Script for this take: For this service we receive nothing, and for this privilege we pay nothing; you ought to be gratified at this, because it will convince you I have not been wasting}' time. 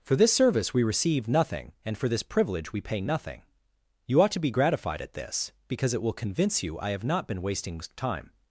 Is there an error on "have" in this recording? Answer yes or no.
no